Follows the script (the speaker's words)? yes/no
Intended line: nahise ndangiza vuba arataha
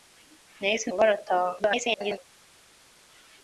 no